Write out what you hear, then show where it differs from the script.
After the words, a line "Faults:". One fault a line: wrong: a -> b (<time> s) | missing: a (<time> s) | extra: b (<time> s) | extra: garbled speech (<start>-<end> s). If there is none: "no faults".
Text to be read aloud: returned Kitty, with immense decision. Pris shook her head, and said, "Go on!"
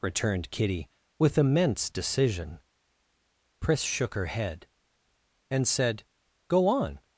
returned Kitty, with immense decision. Pris shook her head, and said, "Go on!"
Faults:
no faults